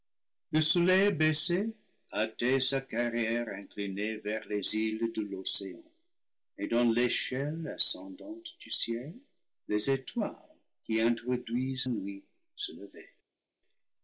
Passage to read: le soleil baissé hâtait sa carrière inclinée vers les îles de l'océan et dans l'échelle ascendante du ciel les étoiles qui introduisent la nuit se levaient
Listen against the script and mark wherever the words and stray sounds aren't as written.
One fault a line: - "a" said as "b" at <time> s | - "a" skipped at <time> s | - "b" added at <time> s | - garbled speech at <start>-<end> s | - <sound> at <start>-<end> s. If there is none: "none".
- "la" skipped at 11.9 s